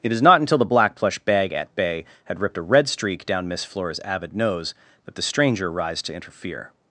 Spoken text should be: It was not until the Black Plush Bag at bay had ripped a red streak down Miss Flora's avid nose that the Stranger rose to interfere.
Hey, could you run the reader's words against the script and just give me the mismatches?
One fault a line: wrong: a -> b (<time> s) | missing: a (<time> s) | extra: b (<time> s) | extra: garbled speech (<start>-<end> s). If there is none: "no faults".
wrong: was -> is (0.1 s)
wrong: rose -> rise (5.7 s)